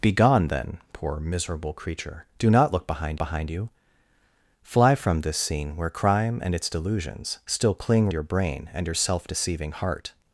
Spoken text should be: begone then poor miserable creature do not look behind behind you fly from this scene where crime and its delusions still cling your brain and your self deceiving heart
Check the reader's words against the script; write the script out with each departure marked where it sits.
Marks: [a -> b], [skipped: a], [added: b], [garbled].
begone then poor miserable creature do not look behind behind you fly from this scene where crime and its delusions still cling your brain and your self deceiving heart